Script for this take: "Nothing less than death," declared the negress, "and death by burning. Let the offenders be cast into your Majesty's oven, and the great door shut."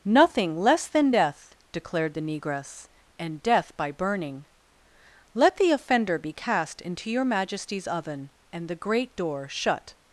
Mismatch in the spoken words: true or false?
true